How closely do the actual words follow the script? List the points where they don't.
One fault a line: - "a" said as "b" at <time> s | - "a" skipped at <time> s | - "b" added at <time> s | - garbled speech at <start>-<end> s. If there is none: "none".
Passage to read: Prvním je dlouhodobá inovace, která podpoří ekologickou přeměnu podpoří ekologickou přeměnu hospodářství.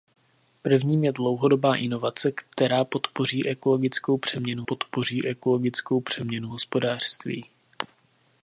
none